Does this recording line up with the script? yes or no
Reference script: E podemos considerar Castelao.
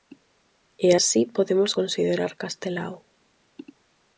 no